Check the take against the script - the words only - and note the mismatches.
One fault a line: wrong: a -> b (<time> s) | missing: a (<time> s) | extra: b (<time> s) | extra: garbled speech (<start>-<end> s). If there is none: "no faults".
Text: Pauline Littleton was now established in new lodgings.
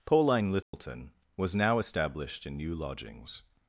no faults